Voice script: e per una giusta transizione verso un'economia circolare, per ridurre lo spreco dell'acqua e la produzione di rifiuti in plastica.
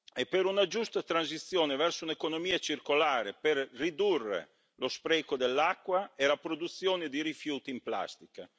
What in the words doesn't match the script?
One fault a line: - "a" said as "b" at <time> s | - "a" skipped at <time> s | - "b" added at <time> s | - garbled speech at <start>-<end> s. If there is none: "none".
none